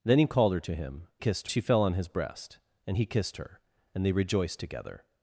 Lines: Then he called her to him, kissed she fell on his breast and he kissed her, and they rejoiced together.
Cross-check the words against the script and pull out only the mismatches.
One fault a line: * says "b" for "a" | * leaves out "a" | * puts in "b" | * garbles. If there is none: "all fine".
all fine